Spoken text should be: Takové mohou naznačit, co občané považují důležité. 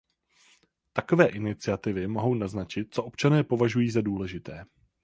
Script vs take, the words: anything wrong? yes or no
yes